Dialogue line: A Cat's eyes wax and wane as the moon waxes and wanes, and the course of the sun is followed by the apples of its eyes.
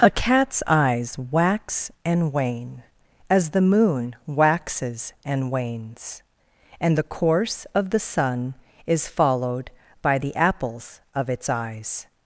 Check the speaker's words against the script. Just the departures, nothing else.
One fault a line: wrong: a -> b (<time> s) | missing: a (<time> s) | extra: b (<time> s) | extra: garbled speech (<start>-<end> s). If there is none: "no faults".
no faults